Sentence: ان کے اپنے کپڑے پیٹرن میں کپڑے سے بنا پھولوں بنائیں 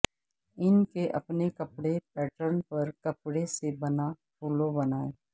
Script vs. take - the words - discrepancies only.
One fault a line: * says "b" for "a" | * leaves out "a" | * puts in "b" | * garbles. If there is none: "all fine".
* says "پر" for "میں"